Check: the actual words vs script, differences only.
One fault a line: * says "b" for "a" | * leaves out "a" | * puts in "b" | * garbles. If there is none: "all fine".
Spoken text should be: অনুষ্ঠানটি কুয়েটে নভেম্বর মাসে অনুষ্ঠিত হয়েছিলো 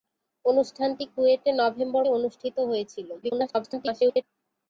* leaves out "মাসে"
* garbles